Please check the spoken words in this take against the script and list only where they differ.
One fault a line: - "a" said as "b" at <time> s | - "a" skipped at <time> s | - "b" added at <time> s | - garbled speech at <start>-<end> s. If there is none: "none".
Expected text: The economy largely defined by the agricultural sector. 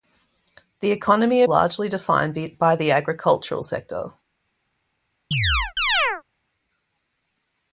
none